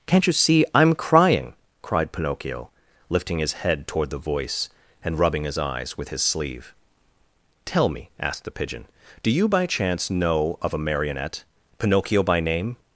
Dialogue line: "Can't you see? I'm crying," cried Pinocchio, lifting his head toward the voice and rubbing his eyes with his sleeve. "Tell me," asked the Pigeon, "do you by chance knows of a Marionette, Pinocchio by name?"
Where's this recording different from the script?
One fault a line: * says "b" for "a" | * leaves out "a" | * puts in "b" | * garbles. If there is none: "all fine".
* says "know" for "knows"